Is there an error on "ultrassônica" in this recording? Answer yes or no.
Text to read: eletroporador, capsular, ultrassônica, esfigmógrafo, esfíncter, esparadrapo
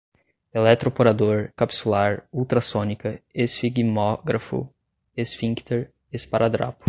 no